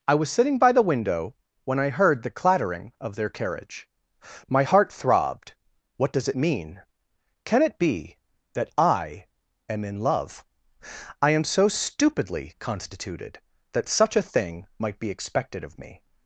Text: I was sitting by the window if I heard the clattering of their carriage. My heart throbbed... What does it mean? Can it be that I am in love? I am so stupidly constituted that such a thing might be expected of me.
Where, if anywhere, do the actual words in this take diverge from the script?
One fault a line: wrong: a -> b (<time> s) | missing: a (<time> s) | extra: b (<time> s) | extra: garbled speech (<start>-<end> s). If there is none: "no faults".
wrong: if -> when (1.6 s)